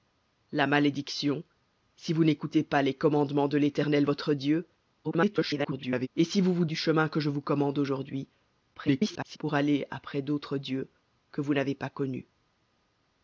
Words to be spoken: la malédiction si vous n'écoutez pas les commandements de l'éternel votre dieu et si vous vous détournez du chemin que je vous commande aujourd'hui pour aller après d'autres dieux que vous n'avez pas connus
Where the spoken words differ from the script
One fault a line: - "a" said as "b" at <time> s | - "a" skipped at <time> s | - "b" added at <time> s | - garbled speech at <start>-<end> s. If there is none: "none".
- garbled speech at 5.0-6.1 s
- "détournez" skipped at 6.6 s
- garbled speech at 8.7-9.4 s